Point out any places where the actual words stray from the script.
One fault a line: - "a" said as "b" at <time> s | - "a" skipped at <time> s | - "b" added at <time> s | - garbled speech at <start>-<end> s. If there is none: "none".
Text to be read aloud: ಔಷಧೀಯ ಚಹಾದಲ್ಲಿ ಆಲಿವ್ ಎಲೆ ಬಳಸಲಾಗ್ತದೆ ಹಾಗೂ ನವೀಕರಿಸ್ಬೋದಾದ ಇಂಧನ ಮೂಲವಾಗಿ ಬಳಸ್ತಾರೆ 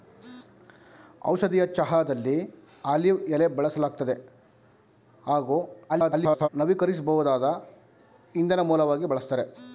- garbled speech at 5.9-6.5 s